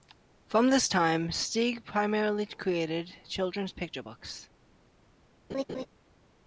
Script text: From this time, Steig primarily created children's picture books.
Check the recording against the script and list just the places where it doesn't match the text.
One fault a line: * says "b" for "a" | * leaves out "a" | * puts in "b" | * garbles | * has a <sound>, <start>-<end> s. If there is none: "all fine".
* has a laugh, 5.5-5.9 s